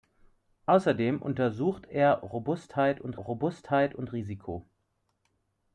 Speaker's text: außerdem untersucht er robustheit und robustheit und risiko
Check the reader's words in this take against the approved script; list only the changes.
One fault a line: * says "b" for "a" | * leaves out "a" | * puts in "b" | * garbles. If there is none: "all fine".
all fine